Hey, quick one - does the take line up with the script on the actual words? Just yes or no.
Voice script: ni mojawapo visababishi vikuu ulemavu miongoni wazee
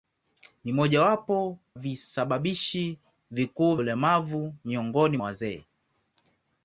yes